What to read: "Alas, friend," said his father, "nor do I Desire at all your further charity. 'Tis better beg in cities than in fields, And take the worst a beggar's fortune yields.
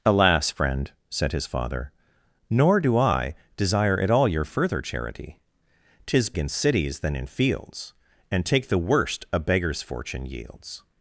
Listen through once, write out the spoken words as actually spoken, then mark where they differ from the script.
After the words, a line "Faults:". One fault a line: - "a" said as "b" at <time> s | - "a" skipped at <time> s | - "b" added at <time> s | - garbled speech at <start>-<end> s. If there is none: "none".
"Alas, friend," said his father, "nor do I Desire at all your further charity. 'Tis in cities than in fields, And take the worst a beggar's fortune yields.
Faults:
- "better beg" skipped at 6.3 s